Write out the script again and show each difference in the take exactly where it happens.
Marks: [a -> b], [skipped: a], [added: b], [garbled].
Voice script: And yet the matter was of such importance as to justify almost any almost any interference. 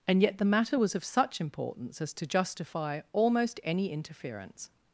And yet the matter was of such importance as to justify almost any [skipped: almost any] interference.